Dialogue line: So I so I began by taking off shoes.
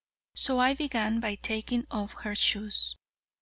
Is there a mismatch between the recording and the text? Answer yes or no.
yes